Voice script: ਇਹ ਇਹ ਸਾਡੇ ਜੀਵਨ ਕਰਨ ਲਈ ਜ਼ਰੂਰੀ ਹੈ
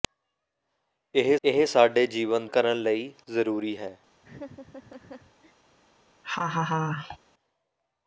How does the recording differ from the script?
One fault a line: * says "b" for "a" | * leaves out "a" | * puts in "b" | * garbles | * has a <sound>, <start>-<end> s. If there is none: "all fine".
* has a laugh, 4.2-5.5 s
* has a laugh, 6.2-7.2 s